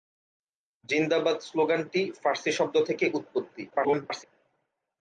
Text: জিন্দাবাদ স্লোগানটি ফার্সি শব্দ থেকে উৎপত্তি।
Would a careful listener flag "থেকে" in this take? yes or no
no